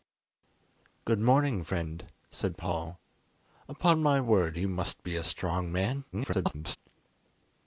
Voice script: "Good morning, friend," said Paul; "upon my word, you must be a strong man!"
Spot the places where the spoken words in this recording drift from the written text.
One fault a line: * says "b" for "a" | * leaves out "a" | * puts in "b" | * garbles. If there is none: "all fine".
* garbles